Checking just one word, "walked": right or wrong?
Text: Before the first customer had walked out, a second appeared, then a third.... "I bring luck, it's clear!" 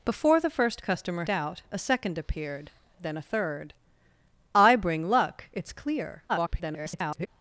wrong